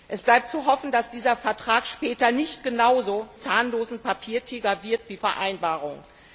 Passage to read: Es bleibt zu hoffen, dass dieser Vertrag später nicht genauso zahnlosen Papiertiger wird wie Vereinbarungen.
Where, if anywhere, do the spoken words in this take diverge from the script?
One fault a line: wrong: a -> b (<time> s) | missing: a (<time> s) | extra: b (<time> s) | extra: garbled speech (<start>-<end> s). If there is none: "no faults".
no faults